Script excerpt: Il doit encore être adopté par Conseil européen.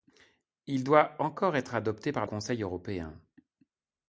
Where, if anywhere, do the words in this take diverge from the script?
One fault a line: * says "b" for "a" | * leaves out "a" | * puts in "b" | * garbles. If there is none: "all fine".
all fine